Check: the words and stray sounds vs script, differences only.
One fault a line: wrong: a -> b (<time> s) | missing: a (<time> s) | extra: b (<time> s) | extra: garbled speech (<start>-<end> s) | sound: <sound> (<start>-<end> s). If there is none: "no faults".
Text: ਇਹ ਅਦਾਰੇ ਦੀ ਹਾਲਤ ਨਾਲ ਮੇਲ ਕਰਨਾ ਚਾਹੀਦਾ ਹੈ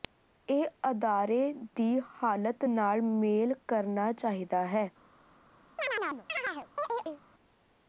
sound: chirp (5.8-7.2 s)